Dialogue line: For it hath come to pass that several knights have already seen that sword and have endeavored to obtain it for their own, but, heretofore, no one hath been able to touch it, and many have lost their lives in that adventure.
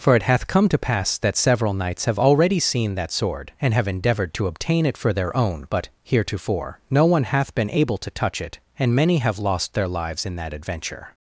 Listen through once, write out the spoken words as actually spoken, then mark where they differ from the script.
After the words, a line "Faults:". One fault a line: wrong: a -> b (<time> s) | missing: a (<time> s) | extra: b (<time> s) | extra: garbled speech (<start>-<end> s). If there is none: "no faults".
For it hath come to pass that several knights have already seen that sword and have endeavored to obtain it for their own, but, heretofore, no one hath been able to touch it, and many have lost their lives in that adventure.
Faults:
no faults